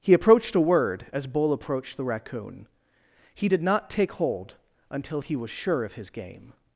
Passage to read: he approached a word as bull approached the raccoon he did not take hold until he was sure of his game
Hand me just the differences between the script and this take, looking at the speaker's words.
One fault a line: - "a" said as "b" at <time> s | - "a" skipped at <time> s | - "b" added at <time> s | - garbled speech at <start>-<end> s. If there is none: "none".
none